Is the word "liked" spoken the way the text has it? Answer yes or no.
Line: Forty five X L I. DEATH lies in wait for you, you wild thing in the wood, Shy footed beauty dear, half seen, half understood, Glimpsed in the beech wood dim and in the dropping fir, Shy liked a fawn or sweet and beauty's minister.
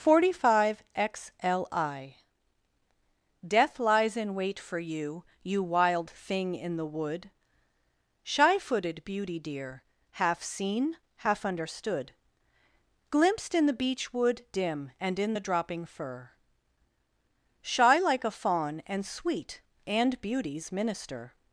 no